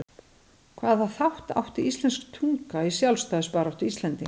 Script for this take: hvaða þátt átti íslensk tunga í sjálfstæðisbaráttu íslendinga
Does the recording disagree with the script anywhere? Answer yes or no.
no